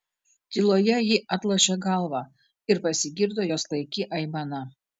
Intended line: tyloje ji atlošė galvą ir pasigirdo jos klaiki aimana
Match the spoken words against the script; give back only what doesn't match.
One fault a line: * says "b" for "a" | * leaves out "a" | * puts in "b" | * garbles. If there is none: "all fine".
all fine